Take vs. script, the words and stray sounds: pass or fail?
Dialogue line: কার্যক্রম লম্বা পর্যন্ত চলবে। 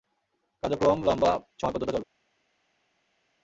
fail